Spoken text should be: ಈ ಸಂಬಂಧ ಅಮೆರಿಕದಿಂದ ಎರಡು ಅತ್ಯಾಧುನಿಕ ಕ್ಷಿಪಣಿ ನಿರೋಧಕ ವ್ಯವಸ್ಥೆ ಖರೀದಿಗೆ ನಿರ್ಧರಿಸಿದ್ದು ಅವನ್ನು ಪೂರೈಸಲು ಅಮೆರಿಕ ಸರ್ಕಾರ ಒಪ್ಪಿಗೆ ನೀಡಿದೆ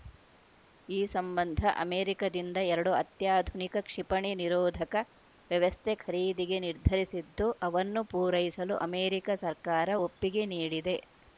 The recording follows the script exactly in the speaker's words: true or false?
true